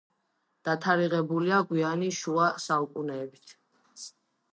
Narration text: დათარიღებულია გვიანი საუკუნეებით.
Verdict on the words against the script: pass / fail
fail